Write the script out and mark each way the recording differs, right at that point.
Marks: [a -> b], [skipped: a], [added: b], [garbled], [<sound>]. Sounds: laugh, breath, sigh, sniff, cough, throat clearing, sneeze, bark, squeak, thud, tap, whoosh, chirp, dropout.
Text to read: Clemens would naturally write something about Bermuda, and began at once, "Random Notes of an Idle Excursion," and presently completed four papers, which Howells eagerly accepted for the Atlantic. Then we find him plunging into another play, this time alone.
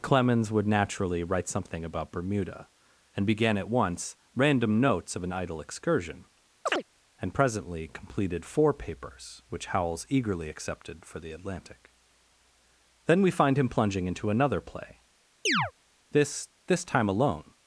Clemens would naturally write something about Bermuda, and began at once, "Random Notes of an Idle Excursion," [chirp] and presently completed four papers, which Howells eagerly accepted for the Atlantic. Then we find him plunging into another play, [chirp] this [added: this] time alone.